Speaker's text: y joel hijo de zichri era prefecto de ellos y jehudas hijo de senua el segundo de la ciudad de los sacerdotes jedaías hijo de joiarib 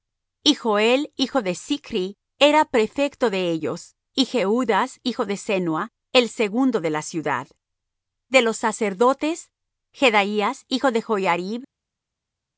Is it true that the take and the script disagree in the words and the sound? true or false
false